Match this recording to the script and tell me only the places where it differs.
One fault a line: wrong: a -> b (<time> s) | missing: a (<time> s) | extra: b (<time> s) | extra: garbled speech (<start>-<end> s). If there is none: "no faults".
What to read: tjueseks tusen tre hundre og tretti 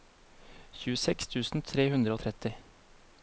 no faults